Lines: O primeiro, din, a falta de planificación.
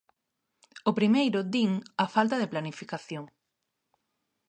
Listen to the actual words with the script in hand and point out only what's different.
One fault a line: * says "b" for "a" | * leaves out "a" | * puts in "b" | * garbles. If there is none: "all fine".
all fine